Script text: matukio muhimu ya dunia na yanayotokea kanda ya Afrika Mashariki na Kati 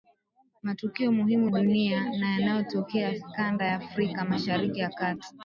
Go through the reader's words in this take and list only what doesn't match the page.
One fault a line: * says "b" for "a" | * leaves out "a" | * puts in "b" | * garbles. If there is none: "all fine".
* leaves out "ya"